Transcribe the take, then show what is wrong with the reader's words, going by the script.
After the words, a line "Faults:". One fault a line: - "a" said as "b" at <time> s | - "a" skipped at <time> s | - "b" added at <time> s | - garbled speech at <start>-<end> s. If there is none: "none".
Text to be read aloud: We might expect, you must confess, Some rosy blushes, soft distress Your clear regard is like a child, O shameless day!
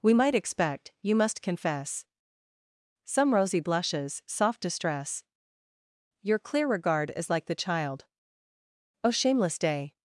We might expect, you must confess, Some rosy blushes, soft distress Your clear regard is like the child, O shameless day!
Faults:
- "a" said as "the" at 7.5 s